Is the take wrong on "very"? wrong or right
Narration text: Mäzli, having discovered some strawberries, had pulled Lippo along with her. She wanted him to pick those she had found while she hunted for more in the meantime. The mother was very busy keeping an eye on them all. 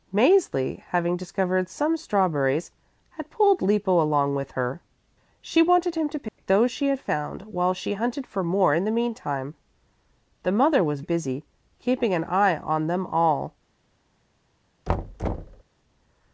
wrong